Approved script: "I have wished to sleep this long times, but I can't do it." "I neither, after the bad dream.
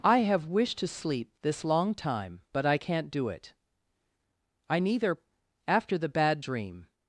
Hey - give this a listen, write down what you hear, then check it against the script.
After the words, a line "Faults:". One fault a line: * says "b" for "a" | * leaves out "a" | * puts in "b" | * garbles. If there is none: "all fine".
"I have wished to sleep this long time, but I can't do it." "I neither, after the bad dream.
Faults:
* says "time" for "times"